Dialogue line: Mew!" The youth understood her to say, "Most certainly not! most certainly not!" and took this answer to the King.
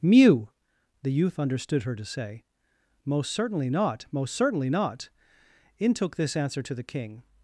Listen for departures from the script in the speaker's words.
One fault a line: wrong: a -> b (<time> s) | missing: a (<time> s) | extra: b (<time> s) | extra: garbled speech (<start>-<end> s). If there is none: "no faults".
wrong: and -> in (5.8 s)